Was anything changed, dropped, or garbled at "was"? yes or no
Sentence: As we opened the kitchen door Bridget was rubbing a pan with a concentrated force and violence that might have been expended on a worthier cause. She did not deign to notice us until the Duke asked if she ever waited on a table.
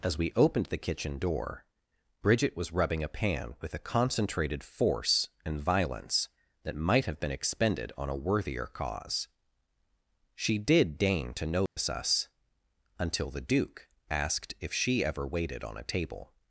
no